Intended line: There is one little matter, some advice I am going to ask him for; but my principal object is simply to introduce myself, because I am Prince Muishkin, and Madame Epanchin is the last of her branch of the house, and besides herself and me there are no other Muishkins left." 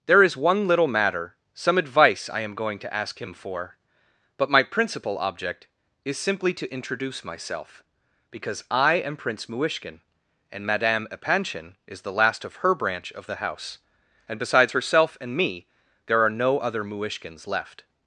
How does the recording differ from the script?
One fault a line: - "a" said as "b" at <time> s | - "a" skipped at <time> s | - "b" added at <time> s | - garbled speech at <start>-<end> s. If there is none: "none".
none